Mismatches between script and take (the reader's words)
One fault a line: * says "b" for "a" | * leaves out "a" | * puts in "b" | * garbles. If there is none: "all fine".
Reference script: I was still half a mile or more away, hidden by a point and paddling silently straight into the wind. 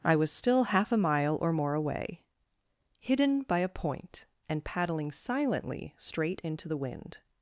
all fine